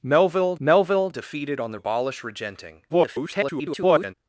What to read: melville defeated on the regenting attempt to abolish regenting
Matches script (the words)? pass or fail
fail